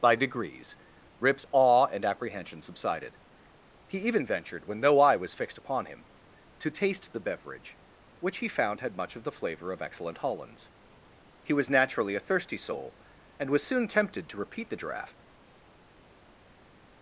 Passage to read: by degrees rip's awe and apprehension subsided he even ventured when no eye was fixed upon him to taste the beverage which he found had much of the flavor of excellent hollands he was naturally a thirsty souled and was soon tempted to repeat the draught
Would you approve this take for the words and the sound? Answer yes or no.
no